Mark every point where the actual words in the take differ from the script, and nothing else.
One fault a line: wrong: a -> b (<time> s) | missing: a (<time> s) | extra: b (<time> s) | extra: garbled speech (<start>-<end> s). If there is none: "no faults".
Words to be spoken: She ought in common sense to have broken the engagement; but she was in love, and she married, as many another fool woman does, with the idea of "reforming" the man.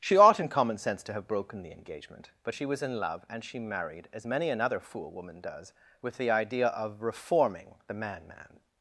extra: man (8.3 s)